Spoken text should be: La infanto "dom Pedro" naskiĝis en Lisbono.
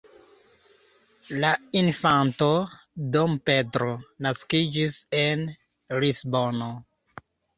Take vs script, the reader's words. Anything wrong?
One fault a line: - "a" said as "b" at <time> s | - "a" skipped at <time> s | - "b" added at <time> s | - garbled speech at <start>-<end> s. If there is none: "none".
none